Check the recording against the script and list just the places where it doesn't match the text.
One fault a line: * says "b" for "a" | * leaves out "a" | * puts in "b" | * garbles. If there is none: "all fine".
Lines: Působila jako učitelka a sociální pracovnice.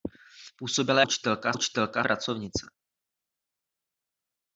* leaves out "jako"
* says "učitelka" for "sociální"